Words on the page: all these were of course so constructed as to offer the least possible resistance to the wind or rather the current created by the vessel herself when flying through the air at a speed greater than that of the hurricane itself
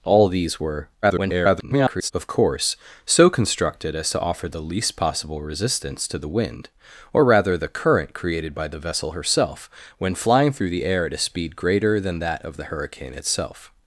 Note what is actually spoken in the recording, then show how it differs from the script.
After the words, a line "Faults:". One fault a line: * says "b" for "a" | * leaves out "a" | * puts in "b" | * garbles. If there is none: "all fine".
all these were [garbled] of course so constructed as to offer the least possible resistance to the wind or rather the current created by the vessel herself when flying through the air at a speed greater than that of the hurricane itself
Faults:
* garbles